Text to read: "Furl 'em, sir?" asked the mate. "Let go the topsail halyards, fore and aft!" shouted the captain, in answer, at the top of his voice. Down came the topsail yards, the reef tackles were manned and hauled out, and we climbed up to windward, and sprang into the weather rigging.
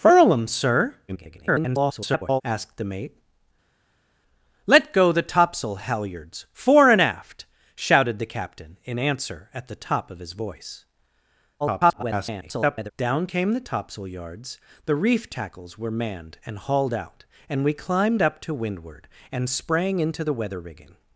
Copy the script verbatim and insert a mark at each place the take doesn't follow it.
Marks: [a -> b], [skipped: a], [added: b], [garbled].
"Furl 'em, sir?" [garbled] asked the mate. "Let go the topsail halyards, fore and aft!" shouted the captain, in answer, at the top of his voice. [garbled] Down came the topsail yards, the reef tackles were manned and hauled out, and we climbed up to windward, and sprang into the weather rigging.